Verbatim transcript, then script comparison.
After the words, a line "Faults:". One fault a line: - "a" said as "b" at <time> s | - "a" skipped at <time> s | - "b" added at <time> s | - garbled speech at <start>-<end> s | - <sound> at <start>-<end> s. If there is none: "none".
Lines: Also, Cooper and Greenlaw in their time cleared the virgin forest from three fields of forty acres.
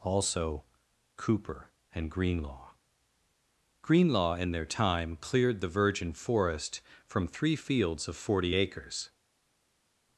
Also, Cooper and Greenlaw Greenlaw in their time cleared the virgin forest from three fields of forty acres.
Faults:
- "Greenlaw" added at 3.8 s